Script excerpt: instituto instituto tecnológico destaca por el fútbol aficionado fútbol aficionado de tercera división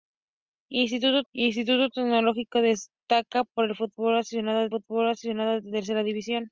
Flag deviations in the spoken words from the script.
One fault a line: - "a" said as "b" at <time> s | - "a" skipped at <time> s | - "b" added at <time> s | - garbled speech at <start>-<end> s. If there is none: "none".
none